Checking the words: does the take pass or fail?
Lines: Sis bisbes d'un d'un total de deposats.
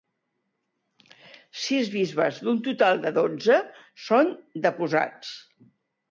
fail